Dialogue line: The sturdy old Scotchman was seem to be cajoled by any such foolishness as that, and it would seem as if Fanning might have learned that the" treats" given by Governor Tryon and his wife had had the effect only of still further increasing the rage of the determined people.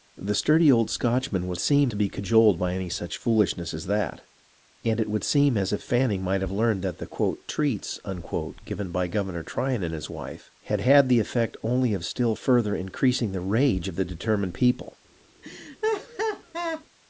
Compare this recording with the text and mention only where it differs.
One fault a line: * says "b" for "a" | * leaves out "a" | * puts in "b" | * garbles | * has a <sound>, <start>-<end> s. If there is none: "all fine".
* has a laugh, 15.4-16.8 s